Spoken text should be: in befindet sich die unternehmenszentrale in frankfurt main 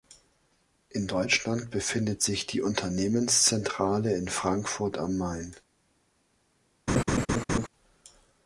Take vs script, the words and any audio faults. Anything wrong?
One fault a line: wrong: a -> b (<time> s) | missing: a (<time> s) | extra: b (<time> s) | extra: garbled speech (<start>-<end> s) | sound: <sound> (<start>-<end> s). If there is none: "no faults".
extra: deutschland (1.1 s)
extra: am (5.0 s)
sound: laugh (6.9-7.7 s)